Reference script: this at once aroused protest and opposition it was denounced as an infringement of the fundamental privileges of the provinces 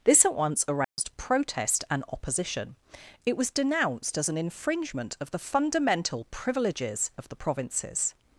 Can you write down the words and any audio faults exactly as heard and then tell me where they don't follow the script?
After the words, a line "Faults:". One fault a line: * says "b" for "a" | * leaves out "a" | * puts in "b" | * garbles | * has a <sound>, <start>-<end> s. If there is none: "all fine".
this at once aroused protest and opposition it was denounced as an infringement of the fundamental privileges of the provinces
Faults:
* has a dropout, 0.8-1.0 s